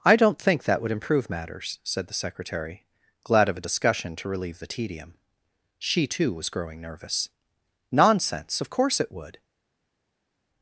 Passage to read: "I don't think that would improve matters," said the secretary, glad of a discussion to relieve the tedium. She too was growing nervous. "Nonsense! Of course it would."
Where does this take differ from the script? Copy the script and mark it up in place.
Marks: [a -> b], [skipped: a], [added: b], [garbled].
"I don't think that would improve matters," said the secretary, glad of a discussion to relieve the tedium. She too was growing nervous. "Nonsense! Of course it would."